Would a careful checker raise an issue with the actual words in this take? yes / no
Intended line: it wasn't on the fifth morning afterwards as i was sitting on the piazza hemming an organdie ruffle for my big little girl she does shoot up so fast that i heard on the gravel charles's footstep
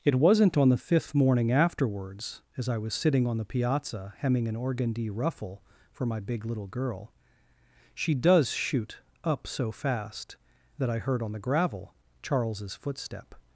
no